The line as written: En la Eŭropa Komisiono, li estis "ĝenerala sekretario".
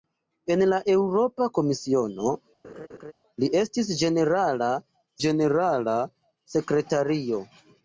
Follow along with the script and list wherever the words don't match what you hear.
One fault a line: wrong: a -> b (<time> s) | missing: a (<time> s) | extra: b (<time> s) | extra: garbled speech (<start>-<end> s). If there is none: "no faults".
extra: ĝenerala (5.3 s)